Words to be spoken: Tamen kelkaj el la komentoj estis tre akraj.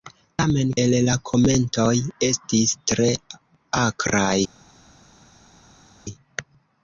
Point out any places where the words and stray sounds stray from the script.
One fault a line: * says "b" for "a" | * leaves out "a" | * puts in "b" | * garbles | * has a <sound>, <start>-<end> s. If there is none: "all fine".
* leaves out "kelkaj"